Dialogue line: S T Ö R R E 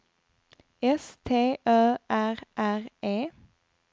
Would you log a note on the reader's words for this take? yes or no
no